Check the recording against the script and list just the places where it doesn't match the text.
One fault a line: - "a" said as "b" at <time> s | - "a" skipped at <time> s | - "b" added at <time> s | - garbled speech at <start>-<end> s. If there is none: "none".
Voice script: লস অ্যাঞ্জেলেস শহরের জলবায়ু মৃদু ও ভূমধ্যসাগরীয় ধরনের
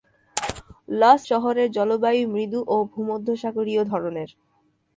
- "অ্যাঞ্জেলেস" skipped at 1.2 s